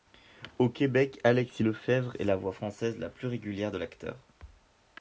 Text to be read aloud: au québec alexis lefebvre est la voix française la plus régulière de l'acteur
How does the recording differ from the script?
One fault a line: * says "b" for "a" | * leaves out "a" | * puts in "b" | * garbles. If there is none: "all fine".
all fine